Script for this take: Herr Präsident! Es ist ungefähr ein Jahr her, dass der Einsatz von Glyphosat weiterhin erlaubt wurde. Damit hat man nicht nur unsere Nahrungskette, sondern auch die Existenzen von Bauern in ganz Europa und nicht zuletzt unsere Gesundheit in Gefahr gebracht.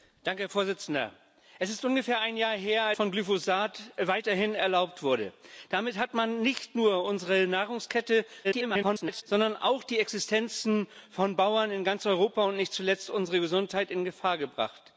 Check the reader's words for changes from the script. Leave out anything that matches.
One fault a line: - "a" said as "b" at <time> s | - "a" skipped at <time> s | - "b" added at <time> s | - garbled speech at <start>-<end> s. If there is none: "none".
- "dass der Einsatz" skipped at 2.9 s
- garbled speech at 8.4-9.2 s